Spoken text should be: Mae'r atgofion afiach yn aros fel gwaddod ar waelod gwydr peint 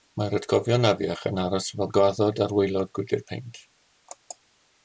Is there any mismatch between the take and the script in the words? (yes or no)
no